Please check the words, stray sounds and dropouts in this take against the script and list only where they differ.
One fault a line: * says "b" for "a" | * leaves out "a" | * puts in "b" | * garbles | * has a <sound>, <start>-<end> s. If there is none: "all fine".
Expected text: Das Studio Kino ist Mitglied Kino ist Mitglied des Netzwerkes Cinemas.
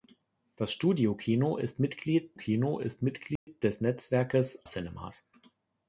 * has a dropout, 3.4-3.5 s